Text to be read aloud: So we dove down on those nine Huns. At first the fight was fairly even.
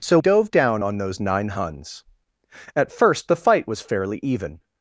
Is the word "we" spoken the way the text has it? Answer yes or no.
no